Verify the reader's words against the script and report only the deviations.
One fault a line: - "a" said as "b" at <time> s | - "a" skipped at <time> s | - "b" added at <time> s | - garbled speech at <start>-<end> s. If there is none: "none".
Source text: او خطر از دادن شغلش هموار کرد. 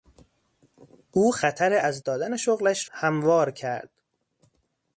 none